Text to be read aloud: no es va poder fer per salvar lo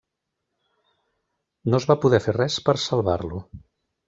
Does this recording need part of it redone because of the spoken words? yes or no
yes